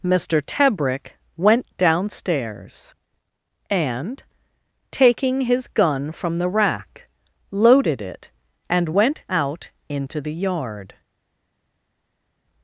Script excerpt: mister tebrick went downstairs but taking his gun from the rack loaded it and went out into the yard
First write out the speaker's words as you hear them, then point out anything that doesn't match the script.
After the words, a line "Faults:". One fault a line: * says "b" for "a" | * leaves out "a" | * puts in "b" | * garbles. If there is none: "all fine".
mister tebrick went downstairs and taking his gun from the rack loaded it and went out into the yard
Faults:
* says "and" for "but"